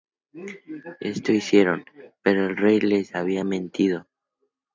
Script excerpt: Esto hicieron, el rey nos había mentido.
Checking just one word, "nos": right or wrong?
wrong